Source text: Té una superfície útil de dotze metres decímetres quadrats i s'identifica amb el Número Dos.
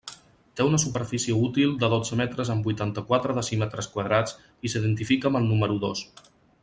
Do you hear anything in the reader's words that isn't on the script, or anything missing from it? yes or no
yes